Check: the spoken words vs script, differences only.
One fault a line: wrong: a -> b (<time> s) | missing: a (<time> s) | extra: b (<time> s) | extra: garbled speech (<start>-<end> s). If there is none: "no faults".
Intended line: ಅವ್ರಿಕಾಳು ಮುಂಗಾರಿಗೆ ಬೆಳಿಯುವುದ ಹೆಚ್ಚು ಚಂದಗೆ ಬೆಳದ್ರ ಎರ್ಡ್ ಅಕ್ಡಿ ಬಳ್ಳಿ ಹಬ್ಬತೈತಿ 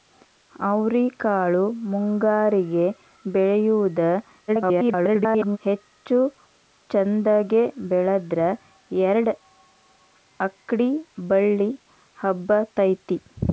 extra: garbled speech (4.5-5.6 s)